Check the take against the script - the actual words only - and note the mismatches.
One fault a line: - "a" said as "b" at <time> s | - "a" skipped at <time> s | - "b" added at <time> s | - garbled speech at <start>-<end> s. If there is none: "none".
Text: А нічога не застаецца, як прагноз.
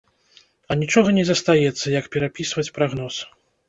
- "перапісваць" added at 2.2 s